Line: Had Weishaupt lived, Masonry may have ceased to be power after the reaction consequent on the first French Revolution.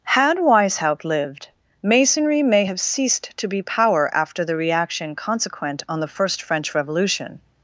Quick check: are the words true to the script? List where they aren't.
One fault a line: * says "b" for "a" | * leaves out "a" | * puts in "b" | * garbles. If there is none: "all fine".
all fine